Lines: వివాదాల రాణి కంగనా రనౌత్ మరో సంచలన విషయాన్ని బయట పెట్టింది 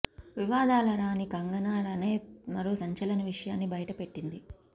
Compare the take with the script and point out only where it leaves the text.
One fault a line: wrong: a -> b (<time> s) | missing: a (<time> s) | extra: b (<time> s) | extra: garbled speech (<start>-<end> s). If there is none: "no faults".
no faults